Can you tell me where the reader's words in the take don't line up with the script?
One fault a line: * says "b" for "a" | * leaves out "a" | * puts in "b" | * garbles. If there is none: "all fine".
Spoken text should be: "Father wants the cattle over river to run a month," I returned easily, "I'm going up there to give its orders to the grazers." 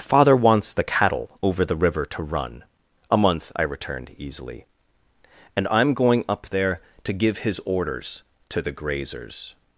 * puts in "the"
* puts in "and"
* says "his" for "its"